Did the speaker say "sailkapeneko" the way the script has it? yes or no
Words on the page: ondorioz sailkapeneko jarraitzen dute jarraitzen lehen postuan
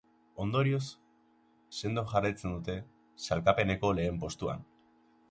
no